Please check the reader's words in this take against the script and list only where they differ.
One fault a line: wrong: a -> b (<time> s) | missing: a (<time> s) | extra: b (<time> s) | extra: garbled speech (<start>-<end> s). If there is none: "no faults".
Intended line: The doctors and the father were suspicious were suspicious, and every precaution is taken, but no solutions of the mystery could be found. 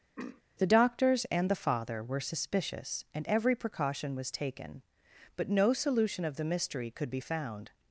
missing: were suspicious (3.0 s)
wrong: is -> was (4.2 s)
wrong: solutions -> solution (5.7 s)